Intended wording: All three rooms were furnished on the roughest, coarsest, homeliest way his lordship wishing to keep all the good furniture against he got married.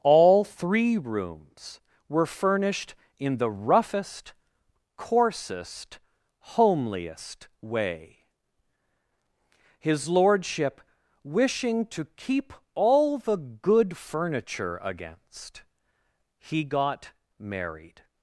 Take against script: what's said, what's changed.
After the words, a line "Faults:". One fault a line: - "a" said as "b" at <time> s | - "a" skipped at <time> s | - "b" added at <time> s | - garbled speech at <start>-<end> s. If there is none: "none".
All three rooms were furnished in the roughest, coarsest, homeliest way his lordship wishing to keep all the good furniture against he got married.
Faults:
- "on" said as "in" at 3.2 s